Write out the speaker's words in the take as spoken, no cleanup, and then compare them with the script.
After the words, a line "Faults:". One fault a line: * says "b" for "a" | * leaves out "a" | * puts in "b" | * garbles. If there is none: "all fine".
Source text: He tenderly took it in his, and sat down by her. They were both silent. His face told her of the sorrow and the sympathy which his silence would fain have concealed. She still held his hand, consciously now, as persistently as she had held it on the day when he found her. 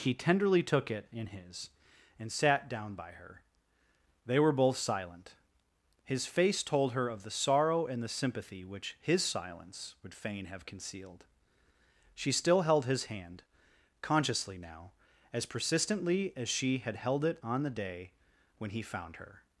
He tenderly took it in his, and sat down by her. They were both silent. His face told her of the sorrow and the sympathy which his silence would fain have concealed. She still held his hand, consciously now, as persistently as she had held it on the day when he found her.
Faults:
all fine